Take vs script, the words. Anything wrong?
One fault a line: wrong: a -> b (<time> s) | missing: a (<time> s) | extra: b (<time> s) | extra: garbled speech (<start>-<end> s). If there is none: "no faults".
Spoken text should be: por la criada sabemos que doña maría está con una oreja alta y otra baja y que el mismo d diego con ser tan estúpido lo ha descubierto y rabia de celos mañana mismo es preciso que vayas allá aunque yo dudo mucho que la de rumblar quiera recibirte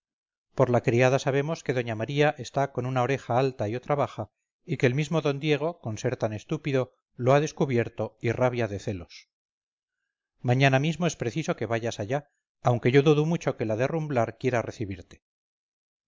no faults